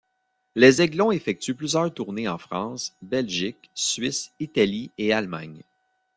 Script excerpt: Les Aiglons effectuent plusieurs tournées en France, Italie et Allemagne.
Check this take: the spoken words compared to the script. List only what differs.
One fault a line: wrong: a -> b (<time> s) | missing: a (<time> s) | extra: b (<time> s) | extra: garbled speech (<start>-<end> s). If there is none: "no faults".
extra: Belgique Suisse (3.0 s)